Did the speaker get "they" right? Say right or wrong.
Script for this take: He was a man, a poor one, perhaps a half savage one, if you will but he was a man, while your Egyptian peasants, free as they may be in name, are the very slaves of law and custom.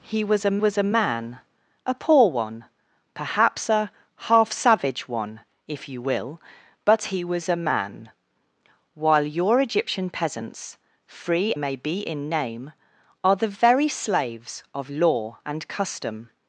wrong